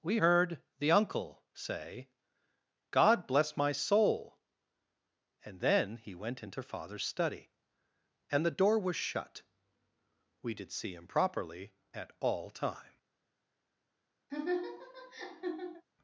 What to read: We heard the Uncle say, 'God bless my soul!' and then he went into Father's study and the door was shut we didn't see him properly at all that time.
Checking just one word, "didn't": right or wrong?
wrong